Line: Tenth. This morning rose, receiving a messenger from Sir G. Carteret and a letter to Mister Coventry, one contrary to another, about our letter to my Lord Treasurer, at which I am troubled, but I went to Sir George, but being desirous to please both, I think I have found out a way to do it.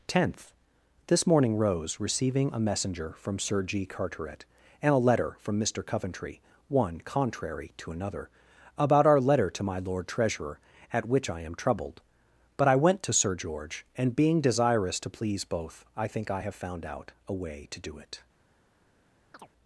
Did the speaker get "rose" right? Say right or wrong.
right